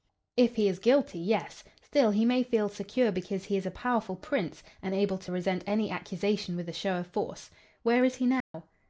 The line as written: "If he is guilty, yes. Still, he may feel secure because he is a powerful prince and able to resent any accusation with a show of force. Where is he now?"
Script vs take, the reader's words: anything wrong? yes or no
no